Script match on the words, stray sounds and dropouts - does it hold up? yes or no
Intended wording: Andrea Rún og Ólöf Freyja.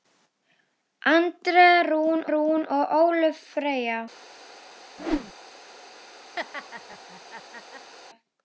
no